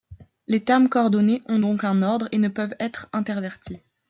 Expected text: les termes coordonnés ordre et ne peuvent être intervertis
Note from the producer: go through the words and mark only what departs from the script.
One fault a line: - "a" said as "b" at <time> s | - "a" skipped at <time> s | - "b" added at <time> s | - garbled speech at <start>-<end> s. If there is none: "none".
- "ont donc un" added at 1.4 s